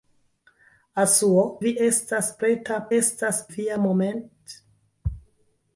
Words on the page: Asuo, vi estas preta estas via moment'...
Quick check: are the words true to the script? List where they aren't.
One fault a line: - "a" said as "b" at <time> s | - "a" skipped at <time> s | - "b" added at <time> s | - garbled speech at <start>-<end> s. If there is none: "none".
none